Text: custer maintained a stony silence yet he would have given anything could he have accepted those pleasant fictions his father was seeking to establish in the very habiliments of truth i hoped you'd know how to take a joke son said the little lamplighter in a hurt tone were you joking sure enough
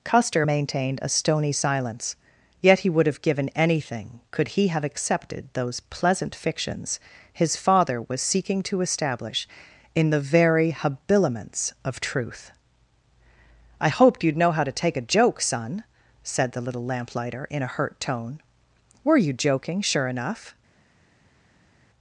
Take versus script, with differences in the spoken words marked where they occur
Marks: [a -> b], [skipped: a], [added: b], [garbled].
custer maintained a stony silence yet he would have given anything could he have accepted those pleasant fictions his father was seeking to establish in the very habiliments of truth i hoped you'd know how to take a joke son said the little lamplighter in a hurt tone were you joking sure enough